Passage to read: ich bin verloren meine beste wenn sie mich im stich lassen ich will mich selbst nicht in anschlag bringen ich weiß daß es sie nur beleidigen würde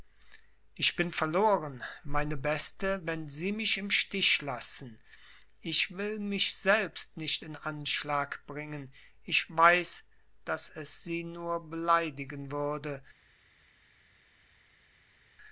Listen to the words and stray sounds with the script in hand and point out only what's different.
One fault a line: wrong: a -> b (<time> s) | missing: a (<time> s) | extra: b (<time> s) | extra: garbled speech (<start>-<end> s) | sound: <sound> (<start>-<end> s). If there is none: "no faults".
no faults